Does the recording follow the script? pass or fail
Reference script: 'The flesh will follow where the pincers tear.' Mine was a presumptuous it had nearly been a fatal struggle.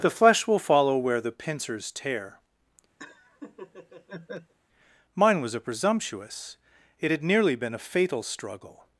pass